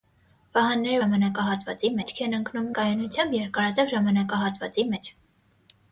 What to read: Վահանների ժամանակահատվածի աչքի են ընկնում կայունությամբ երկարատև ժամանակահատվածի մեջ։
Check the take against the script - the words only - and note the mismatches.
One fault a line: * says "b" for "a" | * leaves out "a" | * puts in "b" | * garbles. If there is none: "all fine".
all fine